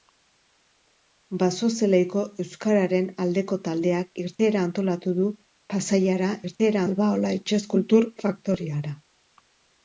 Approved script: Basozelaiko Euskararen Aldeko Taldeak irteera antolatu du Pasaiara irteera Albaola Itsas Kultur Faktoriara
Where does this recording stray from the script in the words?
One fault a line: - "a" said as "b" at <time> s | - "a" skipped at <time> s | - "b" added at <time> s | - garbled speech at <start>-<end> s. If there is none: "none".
none